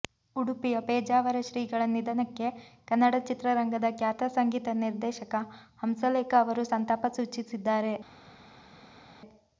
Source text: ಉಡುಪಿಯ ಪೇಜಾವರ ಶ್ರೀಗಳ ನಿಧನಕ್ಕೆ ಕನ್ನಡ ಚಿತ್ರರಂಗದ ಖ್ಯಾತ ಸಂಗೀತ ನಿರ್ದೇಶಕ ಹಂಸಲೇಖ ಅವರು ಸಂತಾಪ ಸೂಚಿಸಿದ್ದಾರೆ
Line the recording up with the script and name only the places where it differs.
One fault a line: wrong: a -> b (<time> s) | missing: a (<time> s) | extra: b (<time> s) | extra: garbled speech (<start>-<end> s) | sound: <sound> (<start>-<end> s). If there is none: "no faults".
no faults